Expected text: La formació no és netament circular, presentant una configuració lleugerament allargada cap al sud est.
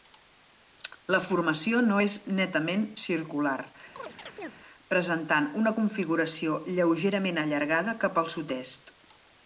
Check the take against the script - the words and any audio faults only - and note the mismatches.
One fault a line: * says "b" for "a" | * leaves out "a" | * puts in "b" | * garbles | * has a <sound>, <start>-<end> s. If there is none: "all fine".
* has a chirp, 4.0-4.5 s